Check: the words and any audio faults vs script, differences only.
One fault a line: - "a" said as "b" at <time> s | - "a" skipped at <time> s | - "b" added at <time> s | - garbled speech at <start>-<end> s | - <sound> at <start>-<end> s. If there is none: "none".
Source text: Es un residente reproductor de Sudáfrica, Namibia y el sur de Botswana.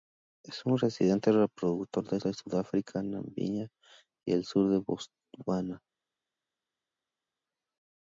- "de" added at 2.2 s